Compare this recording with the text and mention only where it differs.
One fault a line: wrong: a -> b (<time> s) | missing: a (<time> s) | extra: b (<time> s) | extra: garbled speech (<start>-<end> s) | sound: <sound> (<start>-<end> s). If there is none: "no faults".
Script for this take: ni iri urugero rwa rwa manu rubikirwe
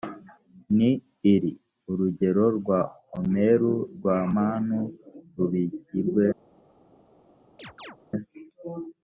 extra: omeru (3.2 s)
sound: chirp (7.6-8.0 s)